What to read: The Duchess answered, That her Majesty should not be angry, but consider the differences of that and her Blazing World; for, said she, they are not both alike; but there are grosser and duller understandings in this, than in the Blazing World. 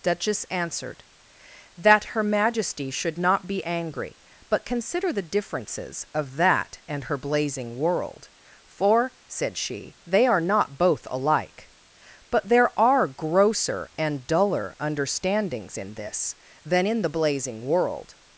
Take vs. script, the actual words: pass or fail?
fail